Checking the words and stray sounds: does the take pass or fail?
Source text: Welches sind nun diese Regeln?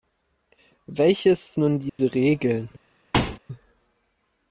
fail